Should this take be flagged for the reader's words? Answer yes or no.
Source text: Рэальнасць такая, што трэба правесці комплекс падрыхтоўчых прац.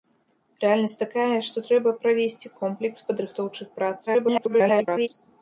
yes